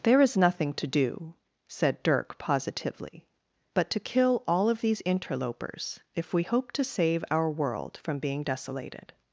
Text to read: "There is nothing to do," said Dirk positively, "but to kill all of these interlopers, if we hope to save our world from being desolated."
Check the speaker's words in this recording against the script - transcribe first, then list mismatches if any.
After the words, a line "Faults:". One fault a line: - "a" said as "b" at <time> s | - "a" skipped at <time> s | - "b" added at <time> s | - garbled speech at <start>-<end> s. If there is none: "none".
"There is nothing to do," said Dirk positively, "but to kill all of these interlopers, if we hope to save our world from being desolated."
Faults:
none